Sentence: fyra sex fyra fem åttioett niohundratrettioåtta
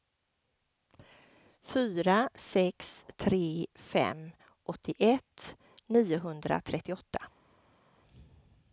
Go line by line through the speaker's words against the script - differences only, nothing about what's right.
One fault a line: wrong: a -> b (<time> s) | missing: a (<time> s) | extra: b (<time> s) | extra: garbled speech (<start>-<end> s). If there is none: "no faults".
wrong: fyra -> tre (3.2 s)